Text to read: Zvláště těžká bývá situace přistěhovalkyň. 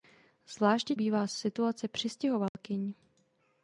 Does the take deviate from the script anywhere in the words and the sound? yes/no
yes